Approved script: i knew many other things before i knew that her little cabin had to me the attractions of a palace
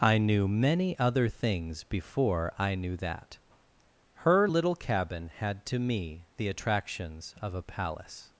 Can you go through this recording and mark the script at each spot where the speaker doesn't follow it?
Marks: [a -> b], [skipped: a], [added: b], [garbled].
i knew many other things before i knew that her little cabin had to me the attractions of a palace